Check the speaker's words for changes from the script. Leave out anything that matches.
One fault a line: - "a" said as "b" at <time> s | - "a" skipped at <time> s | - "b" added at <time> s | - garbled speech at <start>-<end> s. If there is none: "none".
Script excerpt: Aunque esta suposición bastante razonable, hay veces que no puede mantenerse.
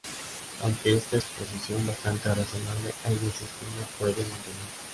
none